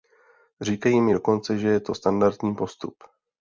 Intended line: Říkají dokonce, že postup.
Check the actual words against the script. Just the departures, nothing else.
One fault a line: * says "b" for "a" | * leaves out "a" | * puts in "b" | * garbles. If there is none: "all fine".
* puts in "mi"
* puts in "je to standardní"